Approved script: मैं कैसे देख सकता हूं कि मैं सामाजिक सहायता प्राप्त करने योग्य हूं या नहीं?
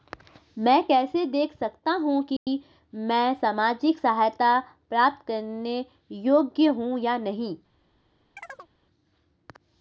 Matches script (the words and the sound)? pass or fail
fail